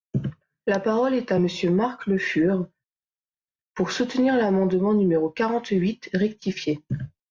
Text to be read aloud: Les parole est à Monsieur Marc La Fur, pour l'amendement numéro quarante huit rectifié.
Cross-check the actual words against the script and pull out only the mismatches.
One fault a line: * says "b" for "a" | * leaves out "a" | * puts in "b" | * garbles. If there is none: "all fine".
* says "La" for "Les"
* says "Le" for "La"
* puts in "soutenir"